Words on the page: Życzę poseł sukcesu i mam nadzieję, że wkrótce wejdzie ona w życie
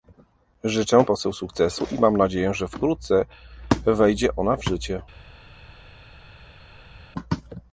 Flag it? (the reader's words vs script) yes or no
no